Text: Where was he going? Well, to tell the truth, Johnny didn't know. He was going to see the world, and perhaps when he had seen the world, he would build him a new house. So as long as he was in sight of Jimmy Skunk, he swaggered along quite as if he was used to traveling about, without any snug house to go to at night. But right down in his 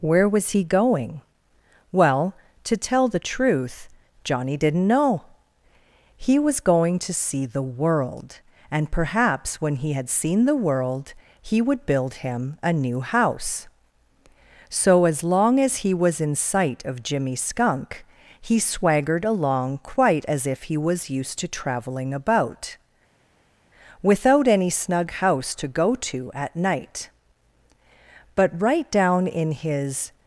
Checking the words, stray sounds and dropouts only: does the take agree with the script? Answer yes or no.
yes